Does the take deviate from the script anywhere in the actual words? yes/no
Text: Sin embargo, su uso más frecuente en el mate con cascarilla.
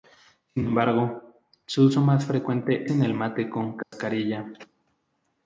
no